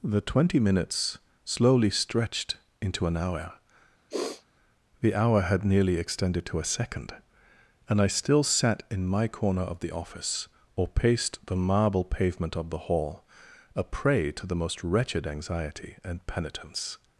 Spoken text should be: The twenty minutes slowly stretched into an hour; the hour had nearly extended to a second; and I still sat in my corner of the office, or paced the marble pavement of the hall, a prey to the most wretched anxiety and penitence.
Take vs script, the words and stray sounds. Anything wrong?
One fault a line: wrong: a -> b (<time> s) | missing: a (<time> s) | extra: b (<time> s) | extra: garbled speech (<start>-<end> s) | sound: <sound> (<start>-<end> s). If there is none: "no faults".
sound: sniff (4.1-4.5 s)